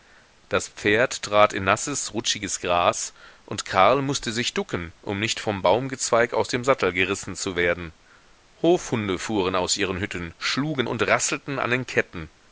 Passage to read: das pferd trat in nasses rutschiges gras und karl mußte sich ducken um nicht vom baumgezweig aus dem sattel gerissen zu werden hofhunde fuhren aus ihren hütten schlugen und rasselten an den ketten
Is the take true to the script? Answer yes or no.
yes